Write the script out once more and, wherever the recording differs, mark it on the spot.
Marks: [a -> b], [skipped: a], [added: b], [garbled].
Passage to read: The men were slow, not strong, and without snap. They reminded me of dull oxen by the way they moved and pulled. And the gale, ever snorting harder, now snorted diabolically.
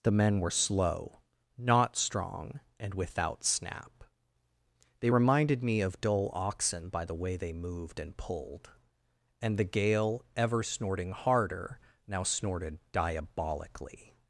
The men were slow, not strong, and without snap. They reminded me of dull oxen by the way they moved and pulled. And the gale, ever snorting harder, now snorted diabolically.